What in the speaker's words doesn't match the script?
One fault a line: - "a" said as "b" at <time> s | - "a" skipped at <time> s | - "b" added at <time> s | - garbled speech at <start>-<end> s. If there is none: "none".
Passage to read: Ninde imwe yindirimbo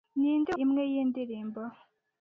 none